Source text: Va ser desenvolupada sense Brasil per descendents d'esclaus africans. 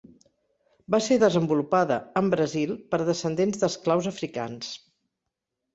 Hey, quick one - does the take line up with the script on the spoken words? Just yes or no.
no